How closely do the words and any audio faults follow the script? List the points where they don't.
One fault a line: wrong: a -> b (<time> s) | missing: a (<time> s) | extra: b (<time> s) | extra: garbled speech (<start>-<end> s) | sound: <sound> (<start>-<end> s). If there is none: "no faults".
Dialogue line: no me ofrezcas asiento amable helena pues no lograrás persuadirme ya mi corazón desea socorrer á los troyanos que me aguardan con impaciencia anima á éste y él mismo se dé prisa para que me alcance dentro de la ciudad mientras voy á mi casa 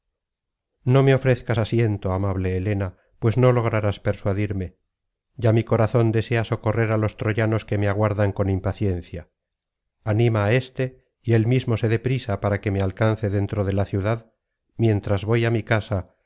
no faults